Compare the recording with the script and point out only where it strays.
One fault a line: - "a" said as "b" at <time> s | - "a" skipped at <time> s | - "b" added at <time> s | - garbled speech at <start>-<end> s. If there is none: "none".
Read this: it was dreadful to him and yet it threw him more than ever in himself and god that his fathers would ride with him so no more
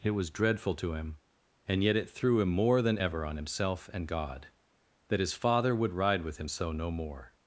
- "in" said as "on" at 3.2 s
- "fathers" said as "father" at 5.3 s